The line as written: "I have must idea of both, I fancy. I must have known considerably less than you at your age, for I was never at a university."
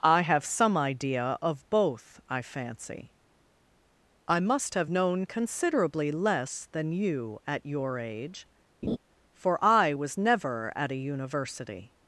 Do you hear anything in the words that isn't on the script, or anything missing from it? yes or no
yes